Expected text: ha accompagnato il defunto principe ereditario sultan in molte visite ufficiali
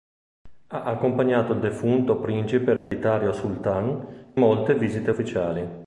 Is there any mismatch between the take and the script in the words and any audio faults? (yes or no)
yes